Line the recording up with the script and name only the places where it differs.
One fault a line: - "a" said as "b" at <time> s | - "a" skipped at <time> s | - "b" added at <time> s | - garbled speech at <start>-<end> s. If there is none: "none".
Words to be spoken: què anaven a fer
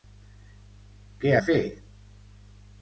- "anaven" skipped at 1.3 s